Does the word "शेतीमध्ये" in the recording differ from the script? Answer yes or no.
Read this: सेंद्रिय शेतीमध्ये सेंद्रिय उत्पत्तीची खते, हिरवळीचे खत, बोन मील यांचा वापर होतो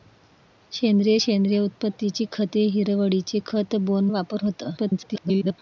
yes